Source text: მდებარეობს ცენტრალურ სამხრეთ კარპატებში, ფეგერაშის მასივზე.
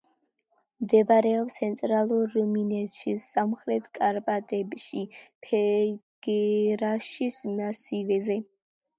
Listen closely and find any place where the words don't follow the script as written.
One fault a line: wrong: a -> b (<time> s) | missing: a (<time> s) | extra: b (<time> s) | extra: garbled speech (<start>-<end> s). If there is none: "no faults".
extra: რუმინეთში (2.3 s)